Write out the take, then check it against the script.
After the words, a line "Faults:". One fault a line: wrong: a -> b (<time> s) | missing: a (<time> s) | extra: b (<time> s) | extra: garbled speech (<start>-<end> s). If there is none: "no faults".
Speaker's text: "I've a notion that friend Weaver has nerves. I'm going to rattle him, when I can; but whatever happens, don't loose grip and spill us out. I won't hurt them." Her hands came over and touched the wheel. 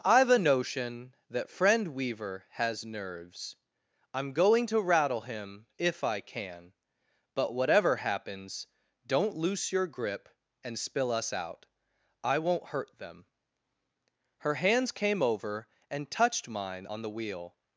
"I've a notion that friend Weaver has nerves. I'm going to rattle him, if I can; but whatever happens, don't loose your grip and spill us out. I won't hurt them." Her hands came over and touched mine on the wheel.
Faults:
wrong: when -> if (5.8 s)
extra: your (9.7 s)
extra: mine on (16.5 s)